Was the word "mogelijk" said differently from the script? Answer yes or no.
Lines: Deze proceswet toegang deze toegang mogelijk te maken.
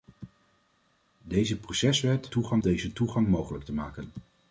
no